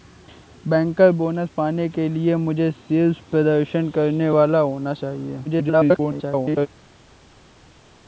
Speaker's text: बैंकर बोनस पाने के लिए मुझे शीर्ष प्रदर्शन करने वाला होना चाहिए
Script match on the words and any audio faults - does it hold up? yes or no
no